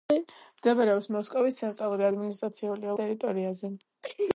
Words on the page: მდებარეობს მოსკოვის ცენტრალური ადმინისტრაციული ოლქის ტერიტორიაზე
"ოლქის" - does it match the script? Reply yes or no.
no